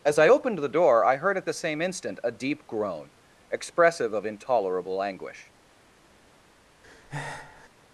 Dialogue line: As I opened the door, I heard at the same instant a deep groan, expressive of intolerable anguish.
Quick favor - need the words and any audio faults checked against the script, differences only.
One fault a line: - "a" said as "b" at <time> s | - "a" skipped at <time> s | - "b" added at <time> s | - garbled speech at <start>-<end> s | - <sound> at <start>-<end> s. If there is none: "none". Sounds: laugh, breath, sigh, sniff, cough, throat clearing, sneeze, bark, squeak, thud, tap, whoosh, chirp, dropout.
- breath at 6.8-7.7 s